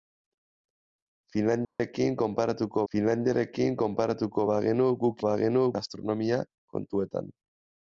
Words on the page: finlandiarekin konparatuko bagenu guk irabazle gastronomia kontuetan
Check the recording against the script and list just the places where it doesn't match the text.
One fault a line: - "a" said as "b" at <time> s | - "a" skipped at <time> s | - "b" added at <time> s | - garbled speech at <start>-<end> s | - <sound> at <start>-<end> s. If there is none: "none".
- dropout at 1.6-1.8 s
- "finlandiarekin konparatuko" added at 2.9 s
- "irabazle" said as "bagenu" at 5.3 s